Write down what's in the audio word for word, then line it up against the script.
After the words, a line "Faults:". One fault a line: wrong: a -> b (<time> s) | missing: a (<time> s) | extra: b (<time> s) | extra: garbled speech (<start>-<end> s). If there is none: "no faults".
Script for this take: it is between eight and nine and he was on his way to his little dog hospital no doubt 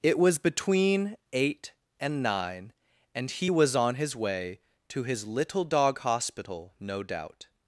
it was between eight and nine and he was on his way to his little dog hospital no doubt
Faults:
wrong: is -> was (0.2 s)